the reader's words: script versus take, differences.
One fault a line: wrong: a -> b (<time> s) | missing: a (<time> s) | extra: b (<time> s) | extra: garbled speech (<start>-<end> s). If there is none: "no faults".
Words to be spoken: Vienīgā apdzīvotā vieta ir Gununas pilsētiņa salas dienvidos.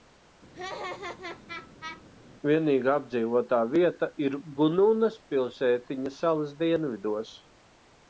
no faults